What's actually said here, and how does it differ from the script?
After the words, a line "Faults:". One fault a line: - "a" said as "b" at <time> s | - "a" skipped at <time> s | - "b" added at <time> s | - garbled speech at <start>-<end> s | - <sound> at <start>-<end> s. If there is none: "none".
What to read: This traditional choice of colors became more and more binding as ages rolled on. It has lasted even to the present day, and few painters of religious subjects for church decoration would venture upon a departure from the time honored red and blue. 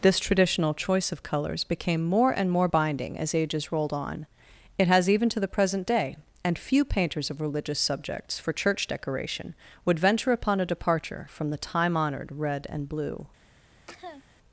This traditional choice of colors became more and more binding as ages rolled on. It has even to the present day, and few painters of religious subjects for church decoration would venture upon a departure from the time honored red and blue.
Faults:
- "lasted" skipped at 5.1 s
- cough at 13.9-14.2 s